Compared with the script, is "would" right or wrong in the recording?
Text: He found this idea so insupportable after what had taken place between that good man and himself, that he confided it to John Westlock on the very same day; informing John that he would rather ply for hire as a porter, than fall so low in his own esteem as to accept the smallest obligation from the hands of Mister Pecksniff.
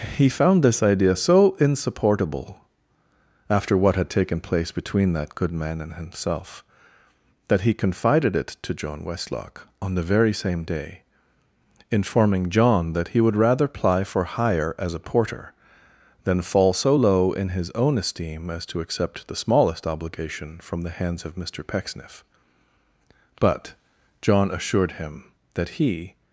right